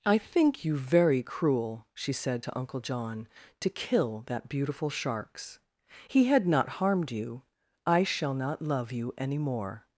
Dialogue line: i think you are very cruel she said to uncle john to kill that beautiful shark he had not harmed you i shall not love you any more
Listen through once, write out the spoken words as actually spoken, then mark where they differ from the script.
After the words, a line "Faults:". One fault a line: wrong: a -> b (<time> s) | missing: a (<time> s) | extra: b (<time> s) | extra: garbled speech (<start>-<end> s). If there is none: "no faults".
i think you very cruel she said to uncle john to kill that beautiful sharks he had not harmed you i shall not love you any more
Faults:
missing: are (0.8 s)
wrong: shark -> sharks (4.9 s)